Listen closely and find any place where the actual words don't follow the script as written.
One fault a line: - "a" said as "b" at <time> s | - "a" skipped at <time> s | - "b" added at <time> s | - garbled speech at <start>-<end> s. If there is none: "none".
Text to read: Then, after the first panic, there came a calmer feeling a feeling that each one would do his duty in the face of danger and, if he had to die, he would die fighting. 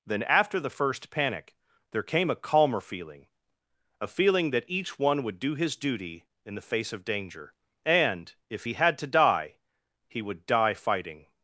none